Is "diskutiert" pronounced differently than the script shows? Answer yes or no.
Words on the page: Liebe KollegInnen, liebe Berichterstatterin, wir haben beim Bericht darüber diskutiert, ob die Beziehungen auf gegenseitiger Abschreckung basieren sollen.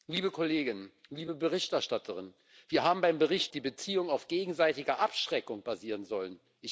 yes